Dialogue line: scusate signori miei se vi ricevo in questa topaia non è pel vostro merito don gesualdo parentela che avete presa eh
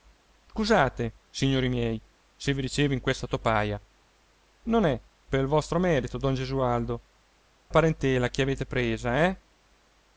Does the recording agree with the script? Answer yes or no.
yes